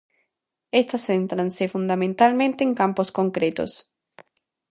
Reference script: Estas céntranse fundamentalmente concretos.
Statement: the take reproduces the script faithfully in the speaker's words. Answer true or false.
false